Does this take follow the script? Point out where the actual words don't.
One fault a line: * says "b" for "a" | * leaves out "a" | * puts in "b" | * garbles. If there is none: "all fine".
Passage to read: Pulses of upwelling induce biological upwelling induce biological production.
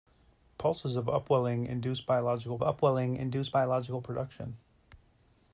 all fine